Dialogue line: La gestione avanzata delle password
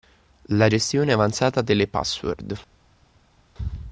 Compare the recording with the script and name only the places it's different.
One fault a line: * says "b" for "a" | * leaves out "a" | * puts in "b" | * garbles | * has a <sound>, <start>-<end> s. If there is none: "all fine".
all fine